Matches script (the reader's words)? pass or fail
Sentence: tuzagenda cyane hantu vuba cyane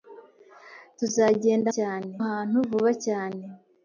pass